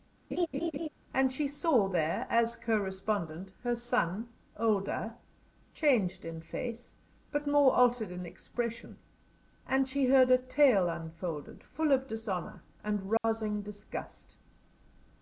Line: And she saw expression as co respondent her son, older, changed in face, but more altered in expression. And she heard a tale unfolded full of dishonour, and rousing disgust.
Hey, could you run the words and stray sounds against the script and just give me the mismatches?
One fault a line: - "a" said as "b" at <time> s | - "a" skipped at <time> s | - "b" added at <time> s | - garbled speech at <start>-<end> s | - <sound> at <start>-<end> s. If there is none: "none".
- laugh at 0.3-0.9 s
- "expression" said as "there" at 1.9 s
- dropout at 13.2-13.2 s